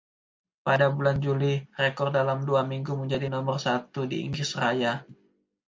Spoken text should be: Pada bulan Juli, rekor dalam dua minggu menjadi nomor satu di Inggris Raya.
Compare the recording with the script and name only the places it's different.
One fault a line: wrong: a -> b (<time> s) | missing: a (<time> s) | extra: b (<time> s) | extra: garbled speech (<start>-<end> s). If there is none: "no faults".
no faults